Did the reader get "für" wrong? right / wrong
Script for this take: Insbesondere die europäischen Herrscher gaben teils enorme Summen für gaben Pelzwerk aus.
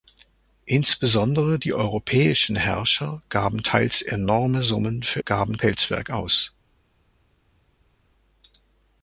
right